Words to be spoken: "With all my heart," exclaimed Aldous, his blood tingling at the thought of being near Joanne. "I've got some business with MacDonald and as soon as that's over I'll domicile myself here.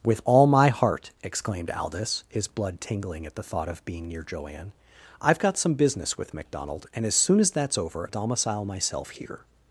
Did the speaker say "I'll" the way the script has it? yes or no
no